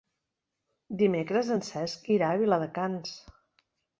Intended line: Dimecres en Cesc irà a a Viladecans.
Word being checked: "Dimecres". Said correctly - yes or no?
yes